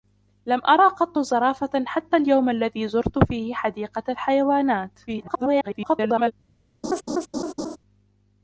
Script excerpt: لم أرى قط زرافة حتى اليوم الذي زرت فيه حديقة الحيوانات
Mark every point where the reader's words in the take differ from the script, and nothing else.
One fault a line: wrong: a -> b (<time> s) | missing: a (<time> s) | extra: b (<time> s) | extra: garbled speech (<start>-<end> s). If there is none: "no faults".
extra: garbled speech (5.1-6.3 s)